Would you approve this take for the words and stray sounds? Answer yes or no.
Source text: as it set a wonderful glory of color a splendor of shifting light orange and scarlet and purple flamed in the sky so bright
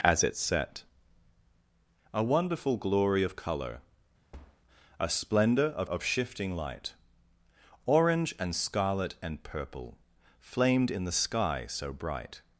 no